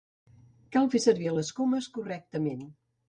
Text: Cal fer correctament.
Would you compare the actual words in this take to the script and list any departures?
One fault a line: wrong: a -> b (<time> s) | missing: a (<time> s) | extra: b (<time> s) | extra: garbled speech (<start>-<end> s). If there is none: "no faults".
extra: servir les comes (1.1 s)